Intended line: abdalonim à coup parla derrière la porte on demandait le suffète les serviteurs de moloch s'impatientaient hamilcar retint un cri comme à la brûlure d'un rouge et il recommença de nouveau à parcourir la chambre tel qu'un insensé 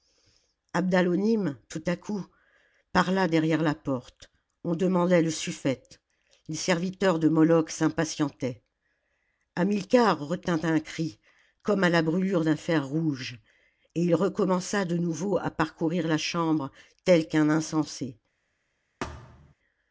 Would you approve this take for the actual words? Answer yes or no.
no